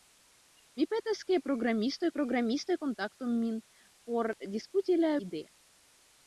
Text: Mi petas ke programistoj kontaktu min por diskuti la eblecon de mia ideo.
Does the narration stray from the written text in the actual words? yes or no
yes